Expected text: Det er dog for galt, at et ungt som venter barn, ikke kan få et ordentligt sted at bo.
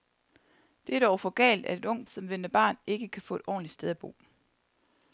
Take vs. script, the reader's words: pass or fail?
pass